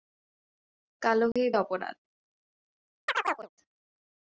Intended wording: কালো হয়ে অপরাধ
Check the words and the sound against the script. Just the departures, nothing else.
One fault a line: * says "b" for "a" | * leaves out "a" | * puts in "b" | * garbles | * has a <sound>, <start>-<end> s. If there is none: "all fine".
* has a dropout, 1.3-1.4 s
* has a chirp, 3.1-3.5 s